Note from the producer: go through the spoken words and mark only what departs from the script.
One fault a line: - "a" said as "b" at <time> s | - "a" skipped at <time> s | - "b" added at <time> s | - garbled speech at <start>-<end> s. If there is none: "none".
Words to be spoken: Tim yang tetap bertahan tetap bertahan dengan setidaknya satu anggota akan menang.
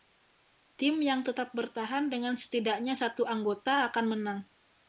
- "tetap bertahan" skipped at 2.1 s